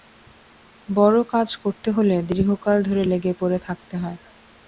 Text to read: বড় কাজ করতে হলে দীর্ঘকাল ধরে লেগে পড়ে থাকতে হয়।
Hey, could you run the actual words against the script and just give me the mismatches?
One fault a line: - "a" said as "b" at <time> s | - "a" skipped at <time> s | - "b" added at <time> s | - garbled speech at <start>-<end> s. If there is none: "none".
none